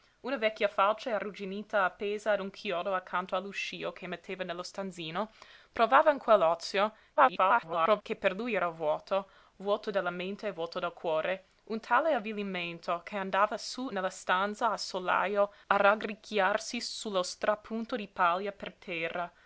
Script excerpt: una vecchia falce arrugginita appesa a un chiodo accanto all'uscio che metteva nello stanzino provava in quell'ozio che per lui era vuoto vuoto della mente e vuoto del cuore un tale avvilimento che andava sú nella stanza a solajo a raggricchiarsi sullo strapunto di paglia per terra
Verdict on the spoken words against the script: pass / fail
fail